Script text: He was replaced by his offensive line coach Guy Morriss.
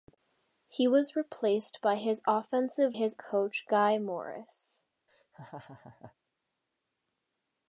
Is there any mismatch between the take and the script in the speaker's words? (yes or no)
yes